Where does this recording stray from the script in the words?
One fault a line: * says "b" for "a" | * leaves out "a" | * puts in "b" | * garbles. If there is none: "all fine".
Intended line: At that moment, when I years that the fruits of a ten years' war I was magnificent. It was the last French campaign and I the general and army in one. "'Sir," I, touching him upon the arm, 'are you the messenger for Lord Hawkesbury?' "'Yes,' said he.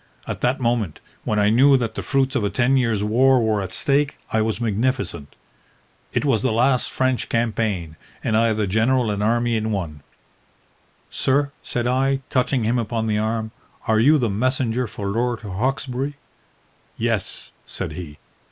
* says "knew" for "years"
* puts in "were at stake"
* puts in "said"